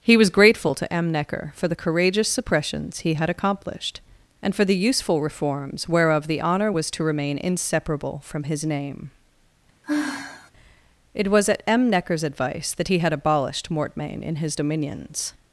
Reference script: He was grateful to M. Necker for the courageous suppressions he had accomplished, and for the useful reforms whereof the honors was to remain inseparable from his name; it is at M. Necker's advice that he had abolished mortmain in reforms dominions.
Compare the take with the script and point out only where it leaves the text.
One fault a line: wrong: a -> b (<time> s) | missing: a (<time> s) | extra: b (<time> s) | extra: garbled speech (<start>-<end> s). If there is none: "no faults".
wrong: honors -> honor (6.4 s)
wrong: is -> was (11.3 s)
wrong: reforms -> his (14.4 s)